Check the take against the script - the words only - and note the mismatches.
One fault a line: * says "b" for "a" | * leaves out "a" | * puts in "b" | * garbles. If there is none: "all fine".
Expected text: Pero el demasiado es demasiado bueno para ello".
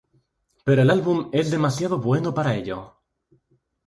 * says "álbum" for "demasiado"